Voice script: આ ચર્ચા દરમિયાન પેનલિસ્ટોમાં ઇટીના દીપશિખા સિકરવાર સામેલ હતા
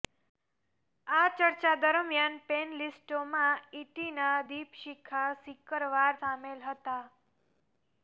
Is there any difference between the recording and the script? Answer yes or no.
no